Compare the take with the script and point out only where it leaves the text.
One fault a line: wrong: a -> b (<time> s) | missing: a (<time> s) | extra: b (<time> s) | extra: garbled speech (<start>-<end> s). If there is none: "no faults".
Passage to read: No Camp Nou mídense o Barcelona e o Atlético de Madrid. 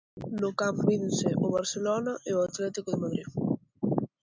missing: Nou (0.8 s)